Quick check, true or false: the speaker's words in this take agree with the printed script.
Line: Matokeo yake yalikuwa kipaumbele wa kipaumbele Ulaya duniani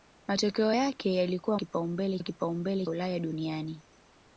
true